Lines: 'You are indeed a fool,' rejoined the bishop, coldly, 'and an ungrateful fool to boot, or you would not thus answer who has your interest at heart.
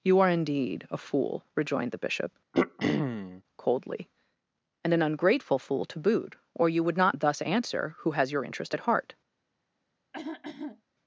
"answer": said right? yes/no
yes